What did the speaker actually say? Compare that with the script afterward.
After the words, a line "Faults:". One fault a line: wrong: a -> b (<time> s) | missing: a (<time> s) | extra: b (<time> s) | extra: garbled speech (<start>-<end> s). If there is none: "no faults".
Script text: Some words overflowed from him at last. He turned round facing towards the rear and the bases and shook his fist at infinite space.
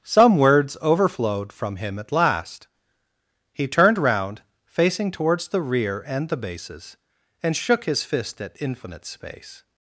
Some words overflowed from him at last. He turned round facing towards the rear and the bases and shook his fist at infinite space.
Faults:
no faults